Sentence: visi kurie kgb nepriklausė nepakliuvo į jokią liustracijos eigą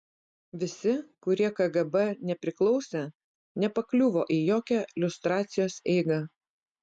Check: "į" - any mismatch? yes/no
no